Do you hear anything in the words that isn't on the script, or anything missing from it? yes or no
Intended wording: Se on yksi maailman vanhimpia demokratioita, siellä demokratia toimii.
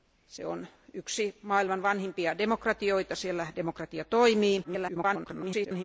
yes